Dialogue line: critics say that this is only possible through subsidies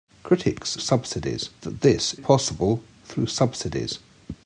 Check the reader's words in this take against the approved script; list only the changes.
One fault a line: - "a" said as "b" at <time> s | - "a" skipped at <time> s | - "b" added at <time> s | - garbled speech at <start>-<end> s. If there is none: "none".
- "say" said as "subsidies" at 0.8 s
- "is only" skipped at 2.1 s